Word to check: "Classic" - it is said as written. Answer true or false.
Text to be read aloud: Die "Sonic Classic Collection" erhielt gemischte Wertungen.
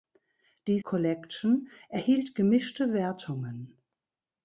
false